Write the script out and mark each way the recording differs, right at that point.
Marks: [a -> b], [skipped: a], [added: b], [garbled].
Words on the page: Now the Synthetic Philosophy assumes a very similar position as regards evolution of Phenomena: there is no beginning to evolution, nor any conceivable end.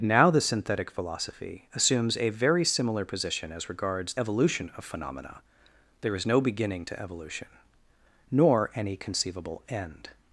Now the Synthetic Philosophy assumes a very similar position as regards evolution of Phenomena: there is no beginning to evolution, nor any conceivable end.